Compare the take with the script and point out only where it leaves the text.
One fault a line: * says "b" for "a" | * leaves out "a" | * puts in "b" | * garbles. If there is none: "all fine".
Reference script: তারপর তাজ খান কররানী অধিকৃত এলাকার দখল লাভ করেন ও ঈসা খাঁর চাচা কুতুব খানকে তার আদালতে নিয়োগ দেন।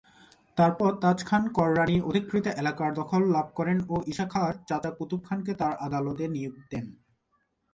all fine